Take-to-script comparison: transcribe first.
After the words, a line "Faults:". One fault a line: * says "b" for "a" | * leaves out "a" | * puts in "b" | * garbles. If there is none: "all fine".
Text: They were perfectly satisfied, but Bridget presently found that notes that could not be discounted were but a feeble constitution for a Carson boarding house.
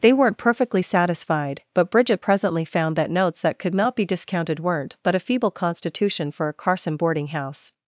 They weren't perfectly satisfied, but Bridget presently found that notes that could not be discounted weren't but a feeble constitution for a Carson boarding house.
Faults:
* says "weren't" for "were"
* says "weren't" for "were"